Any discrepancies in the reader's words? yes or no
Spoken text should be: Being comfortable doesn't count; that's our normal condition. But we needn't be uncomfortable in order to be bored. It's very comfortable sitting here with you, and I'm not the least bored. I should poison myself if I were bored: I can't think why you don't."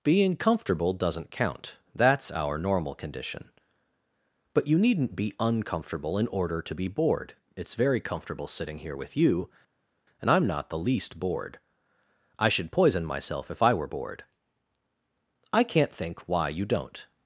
yes